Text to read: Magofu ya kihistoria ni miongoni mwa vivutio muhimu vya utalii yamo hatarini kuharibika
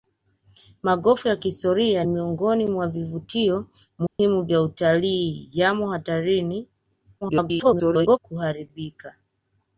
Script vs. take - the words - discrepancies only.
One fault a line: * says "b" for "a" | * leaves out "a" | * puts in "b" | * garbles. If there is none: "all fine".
* leaves out "ni"
* garbles